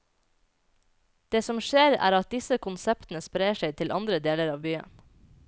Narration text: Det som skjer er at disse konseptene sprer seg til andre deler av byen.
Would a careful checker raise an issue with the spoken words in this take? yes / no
no